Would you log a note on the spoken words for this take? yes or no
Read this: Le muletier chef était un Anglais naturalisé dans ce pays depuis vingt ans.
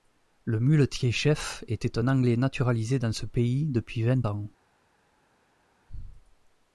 no